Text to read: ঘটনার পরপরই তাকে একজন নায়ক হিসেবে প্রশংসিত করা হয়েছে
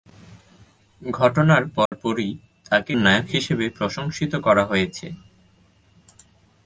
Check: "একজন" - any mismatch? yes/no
yes